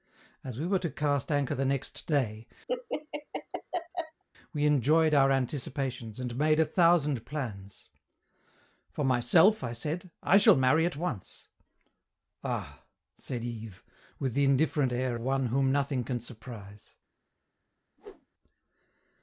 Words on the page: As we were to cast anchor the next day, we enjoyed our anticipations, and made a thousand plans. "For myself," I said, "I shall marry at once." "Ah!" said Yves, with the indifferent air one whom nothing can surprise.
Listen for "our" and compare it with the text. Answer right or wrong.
right